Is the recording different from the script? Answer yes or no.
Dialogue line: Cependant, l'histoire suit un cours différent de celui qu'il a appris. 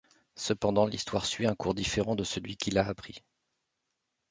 no